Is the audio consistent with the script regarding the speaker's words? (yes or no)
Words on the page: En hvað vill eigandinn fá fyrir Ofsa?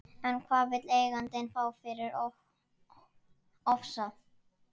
yes